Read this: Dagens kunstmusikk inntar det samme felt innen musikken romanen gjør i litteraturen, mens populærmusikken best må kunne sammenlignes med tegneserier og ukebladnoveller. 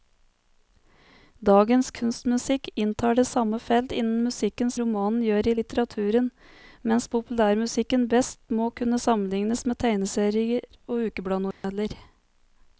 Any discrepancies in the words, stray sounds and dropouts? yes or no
yes